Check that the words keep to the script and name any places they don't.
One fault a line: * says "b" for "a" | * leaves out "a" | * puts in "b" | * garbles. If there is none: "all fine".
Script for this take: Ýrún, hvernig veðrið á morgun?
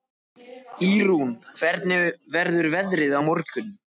* puts in "verður"